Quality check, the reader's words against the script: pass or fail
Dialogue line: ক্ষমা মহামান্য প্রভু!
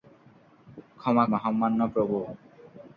pass